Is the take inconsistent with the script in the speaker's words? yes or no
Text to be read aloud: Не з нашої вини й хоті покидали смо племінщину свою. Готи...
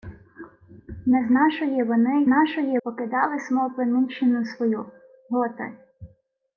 yes